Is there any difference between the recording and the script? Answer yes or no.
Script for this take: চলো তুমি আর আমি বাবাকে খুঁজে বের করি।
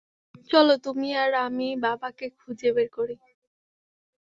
no